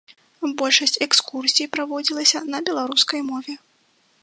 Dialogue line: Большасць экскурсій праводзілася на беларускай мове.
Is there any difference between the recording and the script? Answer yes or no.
no